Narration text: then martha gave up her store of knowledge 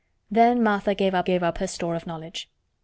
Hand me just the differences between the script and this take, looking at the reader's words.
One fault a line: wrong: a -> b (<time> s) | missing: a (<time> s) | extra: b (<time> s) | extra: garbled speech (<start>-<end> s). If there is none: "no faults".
extra: gave up (1.2 s)